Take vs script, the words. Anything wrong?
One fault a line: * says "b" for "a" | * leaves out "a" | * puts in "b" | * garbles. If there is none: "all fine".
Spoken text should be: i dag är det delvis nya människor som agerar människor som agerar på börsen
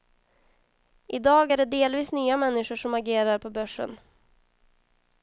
* leaves out "människor som agerar"